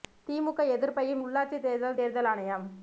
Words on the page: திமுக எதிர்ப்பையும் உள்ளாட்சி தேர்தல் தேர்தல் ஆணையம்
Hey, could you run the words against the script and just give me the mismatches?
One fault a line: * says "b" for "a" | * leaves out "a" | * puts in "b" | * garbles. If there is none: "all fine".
all fine